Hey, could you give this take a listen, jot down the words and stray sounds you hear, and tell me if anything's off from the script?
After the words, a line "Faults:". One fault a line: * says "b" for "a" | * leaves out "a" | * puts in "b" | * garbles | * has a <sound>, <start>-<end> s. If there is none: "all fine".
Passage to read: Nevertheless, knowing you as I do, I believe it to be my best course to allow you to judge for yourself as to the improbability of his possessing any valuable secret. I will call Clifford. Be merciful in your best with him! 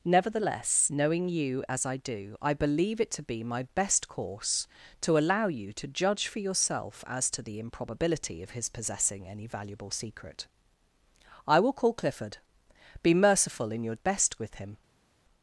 Nevertheless, knowing you as I do, I believe it to be my best course to allow you to judge for yourself as to the improbability of his possessing any valuable secret. I will call Clifford. Be merciful in your best with him!
Faults:
all fine